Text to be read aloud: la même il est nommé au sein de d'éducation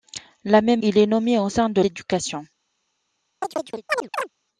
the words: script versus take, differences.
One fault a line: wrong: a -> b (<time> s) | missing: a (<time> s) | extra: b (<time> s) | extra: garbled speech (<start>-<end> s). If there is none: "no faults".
no faults